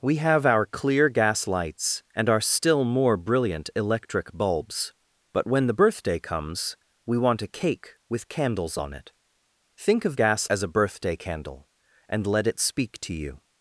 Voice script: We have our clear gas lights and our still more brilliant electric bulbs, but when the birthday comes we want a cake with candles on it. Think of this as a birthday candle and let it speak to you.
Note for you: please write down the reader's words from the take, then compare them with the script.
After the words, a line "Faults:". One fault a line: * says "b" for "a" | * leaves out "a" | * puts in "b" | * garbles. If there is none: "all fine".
We have our clear gas lights and our still more brilliant electric bulbs, but when the birthday comes we want a cake with candles on it. Think of gas as a birthday candle and let it speak to you.
Faults:
* says "gas" for "this"